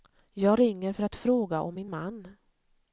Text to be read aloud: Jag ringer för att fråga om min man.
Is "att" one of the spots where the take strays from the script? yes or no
no